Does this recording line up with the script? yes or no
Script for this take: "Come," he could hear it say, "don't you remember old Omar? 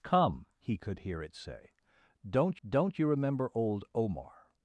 no